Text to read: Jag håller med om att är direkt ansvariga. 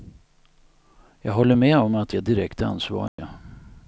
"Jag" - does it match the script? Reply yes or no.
yes